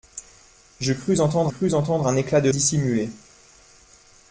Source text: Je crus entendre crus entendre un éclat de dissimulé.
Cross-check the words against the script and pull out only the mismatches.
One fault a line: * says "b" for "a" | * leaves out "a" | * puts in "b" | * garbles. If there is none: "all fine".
all fine